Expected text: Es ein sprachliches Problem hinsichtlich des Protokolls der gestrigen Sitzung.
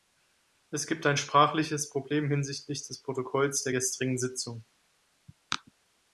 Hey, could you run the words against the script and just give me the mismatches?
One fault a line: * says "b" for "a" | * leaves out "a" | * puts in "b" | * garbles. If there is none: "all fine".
* puts in "gibt"